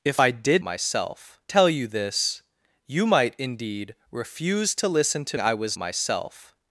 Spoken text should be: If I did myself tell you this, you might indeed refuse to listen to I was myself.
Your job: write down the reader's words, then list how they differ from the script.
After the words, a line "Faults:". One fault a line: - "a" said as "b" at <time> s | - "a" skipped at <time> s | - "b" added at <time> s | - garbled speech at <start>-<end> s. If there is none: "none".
If I did myself tell you this, you might indeed refuse to listen to I was myself.
Faults:
none